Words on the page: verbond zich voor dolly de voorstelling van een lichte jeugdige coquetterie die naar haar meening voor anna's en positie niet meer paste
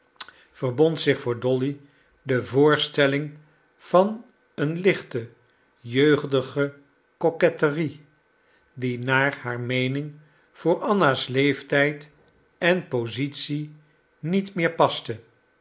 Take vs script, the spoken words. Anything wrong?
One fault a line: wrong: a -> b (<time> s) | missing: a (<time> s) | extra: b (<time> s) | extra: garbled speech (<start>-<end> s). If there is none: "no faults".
extra: leeftijd (11.3 s)